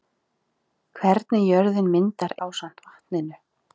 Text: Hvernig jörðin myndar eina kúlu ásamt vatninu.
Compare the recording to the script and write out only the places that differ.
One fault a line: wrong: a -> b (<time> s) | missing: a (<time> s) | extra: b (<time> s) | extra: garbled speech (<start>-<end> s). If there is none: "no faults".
missing: eina kúlu (2.4 s)